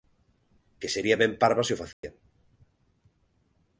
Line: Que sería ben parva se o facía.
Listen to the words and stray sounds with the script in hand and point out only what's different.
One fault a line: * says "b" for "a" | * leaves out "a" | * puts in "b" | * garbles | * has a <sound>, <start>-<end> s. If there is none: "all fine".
* has a dropout, 1.9-2.0 s